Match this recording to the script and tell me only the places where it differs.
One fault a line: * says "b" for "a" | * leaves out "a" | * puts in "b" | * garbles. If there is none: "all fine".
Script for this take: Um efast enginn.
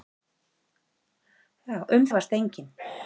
all fine